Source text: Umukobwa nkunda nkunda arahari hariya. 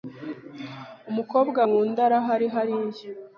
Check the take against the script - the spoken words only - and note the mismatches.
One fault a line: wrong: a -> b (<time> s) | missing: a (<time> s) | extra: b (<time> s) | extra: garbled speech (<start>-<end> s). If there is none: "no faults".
missing: nkunda (2.0 s)